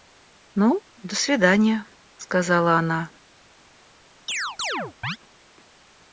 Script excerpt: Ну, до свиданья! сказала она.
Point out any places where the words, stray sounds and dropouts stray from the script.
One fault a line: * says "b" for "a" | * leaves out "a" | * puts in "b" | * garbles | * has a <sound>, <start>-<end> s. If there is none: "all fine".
* has a chirp, 4.3-5.2 s